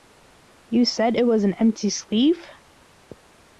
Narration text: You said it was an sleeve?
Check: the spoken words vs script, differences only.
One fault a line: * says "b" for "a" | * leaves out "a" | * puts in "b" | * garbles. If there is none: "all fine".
* puts in "empty"